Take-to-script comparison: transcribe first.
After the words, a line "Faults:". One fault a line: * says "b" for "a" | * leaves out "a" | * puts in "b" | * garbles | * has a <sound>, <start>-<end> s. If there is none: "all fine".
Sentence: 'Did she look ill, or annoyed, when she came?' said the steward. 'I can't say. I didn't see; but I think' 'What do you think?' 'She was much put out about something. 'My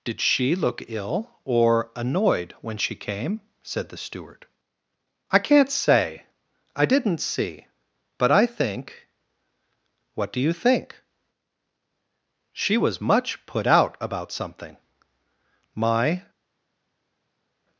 'Did she look ill, or annoyed, when she came?' said the steward. 'I can't say. I didn't see; but I think' 'What do you think?' 'She was much put out about something. 'My
Faults:
all fine